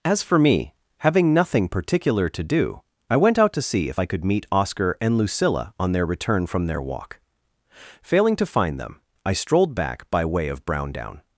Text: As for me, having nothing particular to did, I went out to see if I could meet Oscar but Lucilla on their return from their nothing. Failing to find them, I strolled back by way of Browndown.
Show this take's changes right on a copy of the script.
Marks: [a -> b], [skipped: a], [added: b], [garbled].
As for me, having nothing particular to [did, -> do] I went out to see if I could meet Oscar [but -> and] Lucilla on their return from their [nothing. -> walk] Failing to find them, I strolled back by way of Browndown.